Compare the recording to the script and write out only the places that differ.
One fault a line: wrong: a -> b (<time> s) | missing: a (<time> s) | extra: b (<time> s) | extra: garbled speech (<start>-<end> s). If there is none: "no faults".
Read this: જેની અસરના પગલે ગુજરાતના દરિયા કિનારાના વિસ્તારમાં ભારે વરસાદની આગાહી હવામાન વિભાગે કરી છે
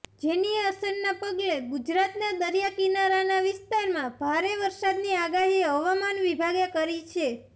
no faults